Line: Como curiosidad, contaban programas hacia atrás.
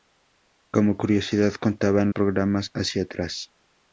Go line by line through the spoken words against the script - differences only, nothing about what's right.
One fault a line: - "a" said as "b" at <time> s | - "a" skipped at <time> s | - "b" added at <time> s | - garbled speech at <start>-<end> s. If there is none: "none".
none